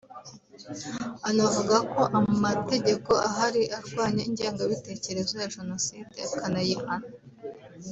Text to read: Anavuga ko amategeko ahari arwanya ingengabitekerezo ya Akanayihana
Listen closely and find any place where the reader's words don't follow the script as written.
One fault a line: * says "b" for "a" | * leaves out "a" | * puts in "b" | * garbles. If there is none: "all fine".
* puts in "Jenoside"